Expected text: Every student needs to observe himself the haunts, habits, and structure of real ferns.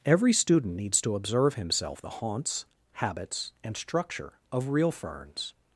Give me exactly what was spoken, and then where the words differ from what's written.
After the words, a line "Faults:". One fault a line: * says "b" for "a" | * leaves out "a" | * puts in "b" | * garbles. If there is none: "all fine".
Every student needs to observe himself the haunts, habits, and structure of real ferns.
Faults:
all fine